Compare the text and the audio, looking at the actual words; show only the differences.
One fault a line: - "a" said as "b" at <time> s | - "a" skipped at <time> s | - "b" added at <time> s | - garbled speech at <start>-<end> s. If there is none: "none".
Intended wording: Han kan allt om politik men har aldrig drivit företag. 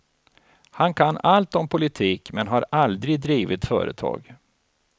none